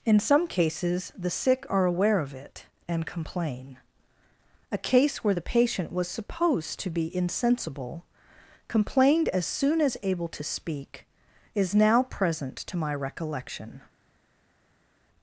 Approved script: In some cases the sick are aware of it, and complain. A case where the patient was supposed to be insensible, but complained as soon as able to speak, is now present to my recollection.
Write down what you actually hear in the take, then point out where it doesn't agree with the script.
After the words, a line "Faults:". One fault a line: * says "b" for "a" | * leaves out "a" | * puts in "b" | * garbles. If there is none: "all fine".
In some cases the sick are aware of it, and complain. A case where the patient was supposed to be insensible, complained as soon as able to speak, is now present to my recollection.
Faults:
* leaves out "but"